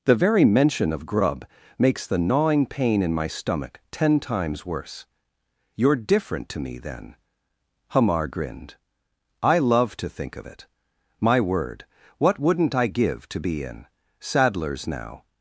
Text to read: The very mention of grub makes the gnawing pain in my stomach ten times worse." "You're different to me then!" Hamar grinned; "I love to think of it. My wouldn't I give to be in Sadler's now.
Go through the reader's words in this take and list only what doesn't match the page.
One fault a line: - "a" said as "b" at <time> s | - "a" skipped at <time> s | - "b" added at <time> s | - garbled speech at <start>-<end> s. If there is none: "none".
- "word what" added at 11.4 s